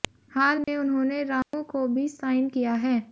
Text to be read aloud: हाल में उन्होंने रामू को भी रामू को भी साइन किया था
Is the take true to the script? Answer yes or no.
no